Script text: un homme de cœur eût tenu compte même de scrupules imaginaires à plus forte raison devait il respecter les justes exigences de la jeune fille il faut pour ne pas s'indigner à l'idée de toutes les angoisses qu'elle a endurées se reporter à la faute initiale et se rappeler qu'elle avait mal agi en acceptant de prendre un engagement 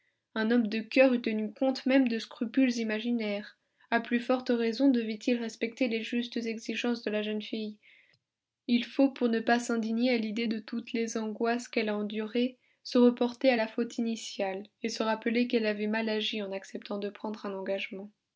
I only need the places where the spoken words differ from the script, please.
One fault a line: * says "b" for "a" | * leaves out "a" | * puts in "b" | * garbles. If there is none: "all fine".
all fine